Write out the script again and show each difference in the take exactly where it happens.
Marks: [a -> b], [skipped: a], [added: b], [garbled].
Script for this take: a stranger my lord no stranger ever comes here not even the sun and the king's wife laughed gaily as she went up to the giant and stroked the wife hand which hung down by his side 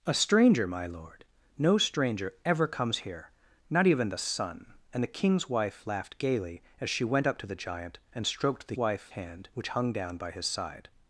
a stranger my lord no stranger ever comes here not even the sun and the king's wife laughed gaily as she went up to the giant and stroked the wife hand which hung down by his side